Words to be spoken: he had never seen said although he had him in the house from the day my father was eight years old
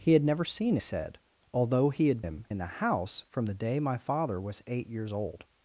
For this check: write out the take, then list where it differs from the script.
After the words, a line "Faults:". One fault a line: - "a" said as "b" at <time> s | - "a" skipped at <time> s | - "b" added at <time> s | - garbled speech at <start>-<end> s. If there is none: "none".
he had never seen said although he had him in the house from the day my father was eight years old
Faults:
none